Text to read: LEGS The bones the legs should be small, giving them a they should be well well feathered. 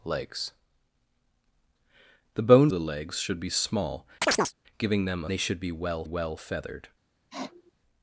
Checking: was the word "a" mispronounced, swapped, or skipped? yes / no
no